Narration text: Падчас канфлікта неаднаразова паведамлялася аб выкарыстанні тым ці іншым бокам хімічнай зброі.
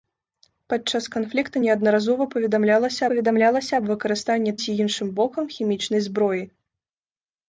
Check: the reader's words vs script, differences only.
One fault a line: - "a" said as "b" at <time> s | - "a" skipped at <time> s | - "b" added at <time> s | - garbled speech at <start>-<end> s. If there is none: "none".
- "паведамлялася" added at 3.1 s
- "тым" skipped at 4.5 s